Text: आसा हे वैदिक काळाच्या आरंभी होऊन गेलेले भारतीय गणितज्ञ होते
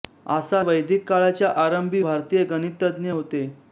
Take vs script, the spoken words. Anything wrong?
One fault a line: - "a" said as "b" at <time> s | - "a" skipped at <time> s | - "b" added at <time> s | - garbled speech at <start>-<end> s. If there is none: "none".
- "हे" skipped at 0.6 s
- "होऊन गेलेले" skipped at 2.0 s